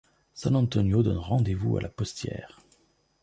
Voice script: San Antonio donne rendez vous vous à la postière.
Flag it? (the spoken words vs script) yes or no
yes